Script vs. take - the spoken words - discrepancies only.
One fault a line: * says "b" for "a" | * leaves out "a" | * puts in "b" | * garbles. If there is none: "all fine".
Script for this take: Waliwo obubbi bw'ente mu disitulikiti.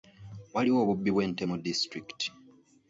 all fine